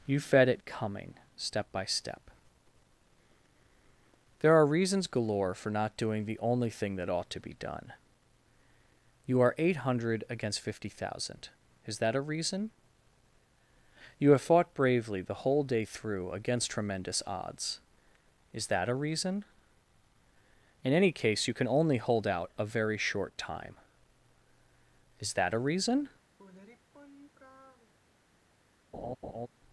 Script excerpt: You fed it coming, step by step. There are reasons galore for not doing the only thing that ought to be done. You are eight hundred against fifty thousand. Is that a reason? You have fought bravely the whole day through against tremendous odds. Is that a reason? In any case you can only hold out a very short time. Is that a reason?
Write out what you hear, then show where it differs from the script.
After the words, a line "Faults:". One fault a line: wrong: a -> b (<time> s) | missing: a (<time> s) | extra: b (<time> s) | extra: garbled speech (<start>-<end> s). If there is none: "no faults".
You fed it coming, step by step. There are reasons galore for not doing the only thing that ought to be done. You are eight hundred against fifty thousand. Is that a reason? You have fought bravely the whole day through against tremendous odds. Is that a reason? In any case you can only hold out a very short time. Is that a reason?
Faults:
no faults